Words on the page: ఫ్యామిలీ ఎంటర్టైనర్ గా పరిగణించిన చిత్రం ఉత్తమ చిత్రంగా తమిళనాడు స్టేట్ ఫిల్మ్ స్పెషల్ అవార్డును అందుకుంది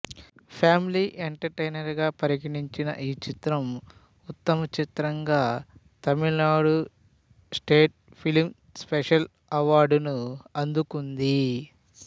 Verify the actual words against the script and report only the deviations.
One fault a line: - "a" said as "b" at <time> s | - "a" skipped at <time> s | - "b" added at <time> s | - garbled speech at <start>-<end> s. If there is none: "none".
- "ఈ" added at 3.0 s